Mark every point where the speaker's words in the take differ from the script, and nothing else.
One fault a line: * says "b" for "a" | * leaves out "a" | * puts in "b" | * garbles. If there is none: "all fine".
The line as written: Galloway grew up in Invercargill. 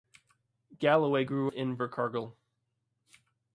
* leaves out "up in"